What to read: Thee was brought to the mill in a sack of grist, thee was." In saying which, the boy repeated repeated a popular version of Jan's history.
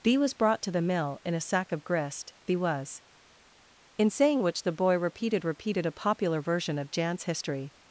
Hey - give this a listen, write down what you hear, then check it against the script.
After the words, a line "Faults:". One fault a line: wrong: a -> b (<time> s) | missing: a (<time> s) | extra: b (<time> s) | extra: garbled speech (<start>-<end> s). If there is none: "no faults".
Thee was brought to the mill in a sack of grist, thee was." In saying which, the boy repeated repeated a popular version of Jan's history.
Faults:
no faults